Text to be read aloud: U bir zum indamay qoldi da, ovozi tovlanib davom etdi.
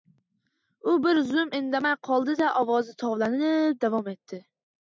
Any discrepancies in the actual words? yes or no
no